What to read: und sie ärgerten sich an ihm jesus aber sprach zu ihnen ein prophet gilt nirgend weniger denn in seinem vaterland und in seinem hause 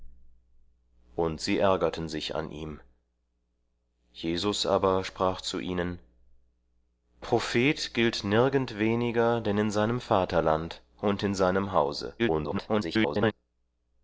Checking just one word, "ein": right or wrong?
wrong